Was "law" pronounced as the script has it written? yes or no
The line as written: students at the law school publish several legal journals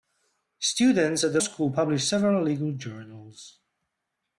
no